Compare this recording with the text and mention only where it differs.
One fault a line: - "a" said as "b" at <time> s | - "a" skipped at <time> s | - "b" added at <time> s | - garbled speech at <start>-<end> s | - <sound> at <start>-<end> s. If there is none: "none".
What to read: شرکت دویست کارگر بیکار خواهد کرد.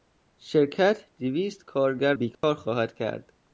- dropout at 2.3-2.4 s